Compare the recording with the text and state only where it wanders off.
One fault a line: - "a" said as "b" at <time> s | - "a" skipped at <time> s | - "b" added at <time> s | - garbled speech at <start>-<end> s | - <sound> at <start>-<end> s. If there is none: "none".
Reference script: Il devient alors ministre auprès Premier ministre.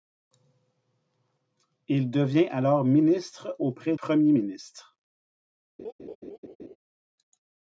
- laugh at 5.8-6.8 s